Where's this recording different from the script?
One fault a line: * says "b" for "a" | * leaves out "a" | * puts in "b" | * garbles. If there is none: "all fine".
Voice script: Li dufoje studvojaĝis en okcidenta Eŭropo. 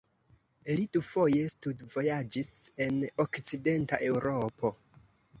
all fine